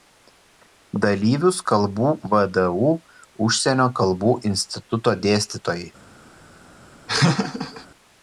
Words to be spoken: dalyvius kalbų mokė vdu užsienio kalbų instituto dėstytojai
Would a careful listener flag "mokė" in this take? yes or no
yes